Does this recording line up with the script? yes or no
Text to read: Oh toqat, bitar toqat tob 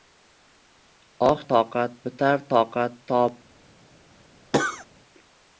yes